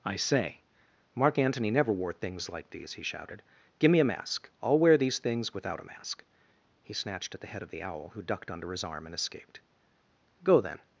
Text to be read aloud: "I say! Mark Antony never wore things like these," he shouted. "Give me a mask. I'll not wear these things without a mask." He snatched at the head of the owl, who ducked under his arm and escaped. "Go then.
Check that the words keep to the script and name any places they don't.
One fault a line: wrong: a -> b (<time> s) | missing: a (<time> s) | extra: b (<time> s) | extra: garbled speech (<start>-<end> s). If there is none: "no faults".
missing: not (4.8 s)